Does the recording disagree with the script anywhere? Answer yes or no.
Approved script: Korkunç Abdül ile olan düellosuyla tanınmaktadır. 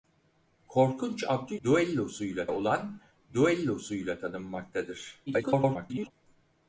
yes